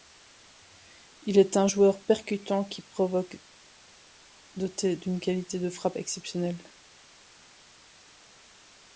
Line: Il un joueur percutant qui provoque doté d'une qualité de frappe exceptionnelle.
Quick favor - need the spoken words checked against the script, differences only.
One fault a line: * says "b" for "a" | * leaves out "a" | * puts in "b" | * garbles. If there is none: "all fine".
* puts in "est"